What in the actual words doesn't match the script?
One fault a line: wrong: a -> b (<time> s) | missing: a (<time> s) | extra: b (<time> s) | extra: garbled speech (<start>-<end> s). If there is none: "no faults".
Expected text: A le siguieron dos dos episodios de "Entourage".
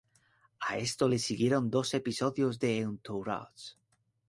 extra: esto (0.8 s)
missing: dos (1.9 s)